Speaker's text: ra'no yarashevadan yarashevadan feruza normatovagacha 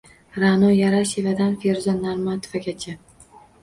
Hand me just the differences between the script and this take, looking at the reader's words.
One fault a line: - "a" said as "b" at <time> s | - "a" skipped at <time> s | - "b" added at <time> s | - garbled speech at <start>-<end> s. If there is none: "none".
- "yarashevadan" skipped at 1.5 s